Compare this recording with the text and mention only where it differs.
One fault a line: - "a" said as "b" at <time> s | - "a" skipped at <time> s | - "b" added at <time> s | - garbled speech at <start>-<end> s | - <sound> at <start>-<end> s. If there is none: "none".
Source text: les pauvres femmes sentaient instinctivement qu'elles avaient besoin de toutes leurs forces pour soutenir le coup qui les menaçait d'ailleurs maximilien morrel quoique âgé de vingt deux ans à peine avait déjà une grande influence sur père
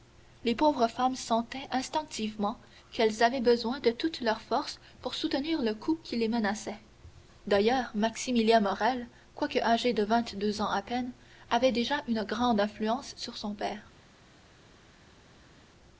- "son" added at 13.4 s